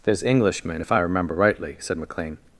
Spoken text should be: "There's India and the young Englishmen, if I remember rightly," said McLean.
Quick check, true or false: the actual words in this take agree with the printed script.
false